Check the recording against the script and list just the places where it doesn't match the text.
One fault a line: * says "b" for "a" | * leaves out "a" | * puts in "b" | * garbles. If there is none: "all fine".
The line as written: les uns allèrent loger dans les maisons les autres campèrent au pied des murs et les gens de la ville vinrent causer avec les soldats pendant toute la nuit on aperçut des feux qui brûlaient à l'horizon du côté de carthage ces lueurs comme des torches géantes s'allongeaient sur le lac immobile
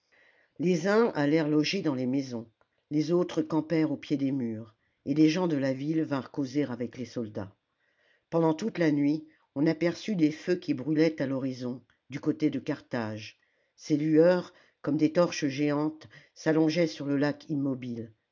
all fine